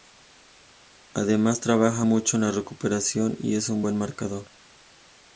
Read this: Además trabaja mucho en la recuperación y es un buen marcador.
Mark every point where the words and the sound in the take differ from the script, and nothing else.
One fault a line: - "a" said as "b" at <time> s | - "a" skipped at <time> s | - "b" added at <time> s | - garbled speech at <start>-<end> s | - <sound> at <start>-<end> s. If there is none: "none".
none